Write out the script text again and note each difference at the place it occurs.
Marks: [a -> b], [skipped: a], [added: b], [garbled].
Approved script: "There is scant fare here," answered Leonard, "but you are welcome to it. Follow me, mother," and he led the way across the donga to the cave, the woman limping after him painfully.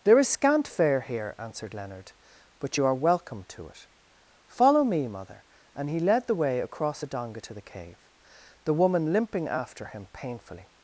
"There is scant fare here," answered Leonard, "but you are welcome to it. Follow me, mother," and he led the way across [the -> a] donga to the cave, the woman limping after him painfully.